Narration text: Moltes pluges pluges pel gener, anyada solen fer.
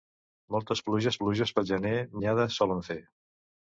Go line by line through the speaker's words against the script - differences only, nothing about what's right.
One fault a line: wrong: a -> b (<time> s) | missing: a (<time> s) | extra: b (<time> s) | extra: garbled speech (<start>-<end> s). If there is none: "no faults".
no faults